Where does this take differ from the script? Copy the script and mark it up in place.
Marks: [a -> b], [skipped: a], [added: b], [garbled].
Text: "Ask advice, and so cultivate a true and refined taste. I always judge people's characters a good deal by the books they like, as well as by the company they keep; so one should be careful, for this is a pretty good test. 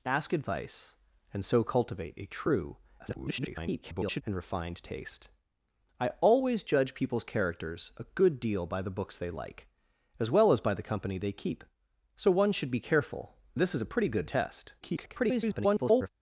"Ask advice, and so cultivate a true [garbled] and refined taste. I always judge people's characters a good deal by the books they like, as well as by the company they keep; so one should be careful, [skipped: for] this is a pretty good test. [garbled]